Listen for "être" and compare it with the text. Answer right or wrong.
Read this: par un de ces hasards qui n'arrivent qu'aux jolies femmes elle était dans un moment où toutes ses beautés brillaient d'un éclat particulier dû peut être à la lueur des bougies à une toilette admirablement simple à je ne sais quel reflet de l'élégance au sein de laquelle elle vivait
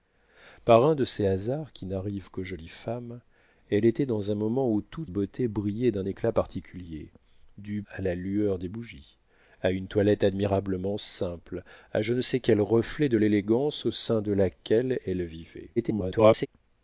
wrong